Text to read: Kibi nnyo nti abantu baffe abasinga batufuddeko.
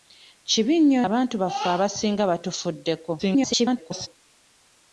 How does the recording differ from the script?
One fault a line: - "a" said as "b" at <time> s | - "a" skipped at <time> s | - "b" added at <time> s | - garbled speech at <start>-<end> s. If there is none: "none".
- "nti" skipped at 1.0 s
- garbled speech at 3.2-4.1 s